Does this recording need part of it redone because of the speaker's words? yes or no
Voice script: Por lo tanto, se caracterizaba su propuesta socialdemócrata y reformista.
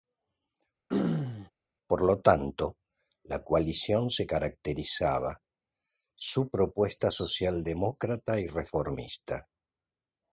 yes